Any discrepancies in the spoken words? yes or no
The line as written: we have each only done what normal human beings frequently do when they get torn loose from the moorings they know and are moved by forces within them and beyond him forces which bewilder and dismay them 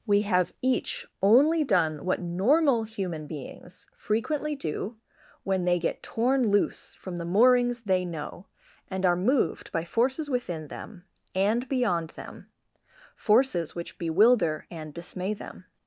yes